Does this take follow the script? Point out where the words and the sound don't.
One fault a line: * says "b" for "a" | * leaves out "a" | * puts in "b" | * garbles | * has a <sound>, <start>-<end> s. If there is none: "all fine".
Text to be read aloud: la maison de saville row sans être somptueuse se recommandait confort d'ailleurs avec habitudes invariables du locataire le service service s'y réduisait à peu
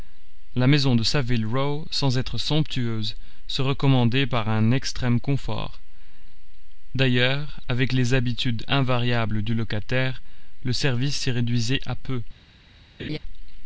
* puts in "par un extrême"
* puts in "les"
* leaves out "service"
* has a laugh, 13.0-13.2 s